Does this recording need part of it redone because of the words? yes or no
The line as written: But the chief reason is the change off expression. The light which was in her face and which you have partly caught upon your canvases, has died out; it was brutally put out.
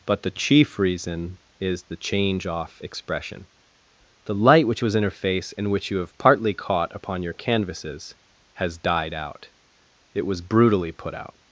no